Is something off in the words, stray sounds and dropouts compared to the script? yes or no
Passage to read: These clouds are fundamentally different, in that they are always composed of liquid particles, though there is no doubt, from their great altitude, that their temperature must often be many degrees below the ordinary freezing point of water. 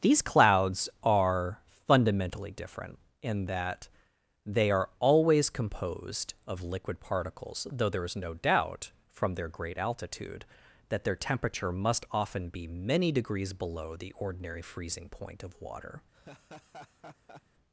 yes